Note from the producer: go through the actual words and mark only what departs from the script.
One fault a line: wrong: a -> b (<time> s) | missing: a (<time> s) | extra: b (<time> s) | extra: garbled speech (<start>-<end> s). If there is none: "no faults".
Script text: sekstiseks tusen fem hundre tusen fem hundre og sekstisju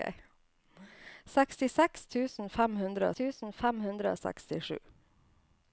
no faults